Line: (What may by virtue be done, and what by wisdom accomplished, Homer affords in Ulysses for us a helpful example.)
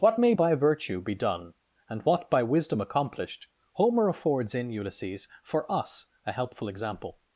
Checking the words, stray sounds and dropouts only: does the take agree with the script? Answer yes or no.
yes